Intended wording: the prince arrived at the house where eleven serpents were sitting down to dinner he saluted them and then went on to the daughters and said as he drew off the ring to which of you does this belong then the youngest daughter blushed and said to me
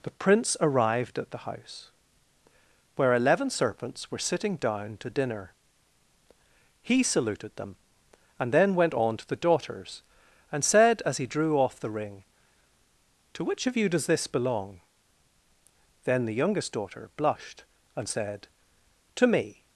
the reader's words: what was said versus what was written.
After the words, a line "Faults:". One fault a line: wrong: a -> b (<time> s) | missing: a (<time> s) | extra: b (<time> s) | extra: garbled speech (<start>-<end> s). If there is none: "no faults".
the prince arrived at the house where eleven serpents were sitting down to dinner he saluted them and then went on to the daughters and said as he drew off the ring to which of you does this belong then the youngest daughter blushed and said to me
Faults:
no faults